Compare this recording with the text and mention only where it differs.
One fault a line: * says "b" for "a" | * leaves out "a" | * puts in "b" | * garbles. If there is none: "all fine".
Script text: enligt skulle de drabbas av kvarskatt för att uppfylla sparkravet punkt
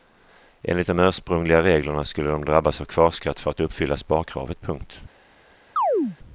* puts in "de ursprungliga reglerna"